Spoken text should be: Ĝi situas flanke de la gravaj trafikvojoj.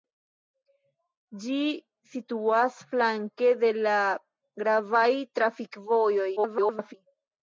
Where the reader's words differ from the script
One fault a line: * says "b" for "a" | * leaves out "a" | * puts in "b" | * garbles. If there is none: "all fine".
* garbles